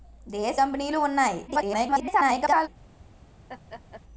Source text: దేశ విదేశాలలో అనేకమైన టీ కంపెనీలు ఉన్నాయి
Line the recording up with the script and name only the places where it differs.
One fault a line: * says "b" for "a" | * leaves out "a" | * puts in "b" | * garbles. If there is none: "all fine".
* leaves out "విదేశాలలో అనేకమైన టీ"
* garbles